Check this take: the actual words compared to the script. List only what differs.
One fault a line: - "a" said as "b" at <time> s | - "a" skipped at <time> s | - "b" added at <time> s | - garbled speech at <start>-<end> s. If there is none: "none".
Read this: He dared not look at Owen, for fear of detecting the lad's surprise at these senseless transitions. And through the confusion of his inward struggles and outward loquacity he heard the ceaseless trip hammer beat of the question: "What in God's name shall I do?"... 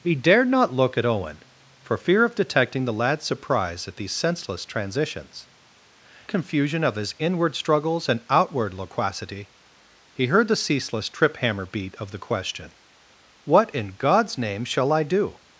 - "And through the" skipped at 5.5 s